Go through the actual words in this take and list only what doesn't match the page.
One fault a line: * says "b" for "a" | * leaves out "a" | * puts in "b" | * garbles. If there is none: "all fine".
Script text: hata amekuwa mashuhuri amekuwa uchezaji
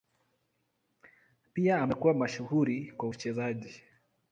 * says "pia" for "hata"
* says "kwa" for "amekuwa"